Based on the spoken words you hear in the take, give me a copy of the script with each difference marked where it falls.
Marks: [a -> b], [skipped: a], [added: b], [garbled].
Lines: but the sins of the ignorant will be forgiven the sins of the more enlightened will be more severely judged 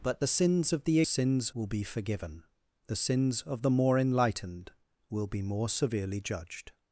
but the sins of the [ignorant -> sins] will be forgiven the sins of the more enlightened will be more severely judged